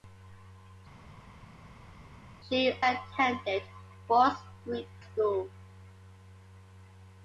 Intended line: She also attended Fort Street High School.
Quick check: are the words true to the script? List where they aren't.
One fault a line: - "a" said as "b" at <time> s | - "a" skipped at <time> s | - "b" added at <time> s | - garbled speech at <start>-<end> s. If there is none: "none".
- "also" skipped at 2.7 s
- "High" skipped at 4.9 s